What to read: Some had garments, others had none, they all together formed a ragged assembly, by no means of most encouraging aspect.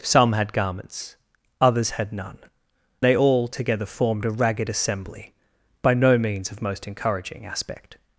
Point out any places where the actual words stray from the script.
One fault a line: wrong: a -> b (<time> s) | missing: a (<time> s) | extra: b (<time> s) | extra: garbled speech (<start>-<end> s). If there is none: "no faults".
no faults